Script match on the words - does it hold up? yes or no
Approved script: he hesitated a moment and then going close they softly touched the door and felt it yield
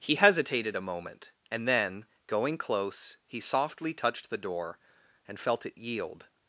no